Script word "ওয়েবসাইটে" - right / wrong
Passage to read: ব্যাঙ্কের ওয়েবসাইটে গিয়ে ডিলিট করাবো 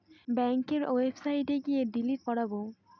right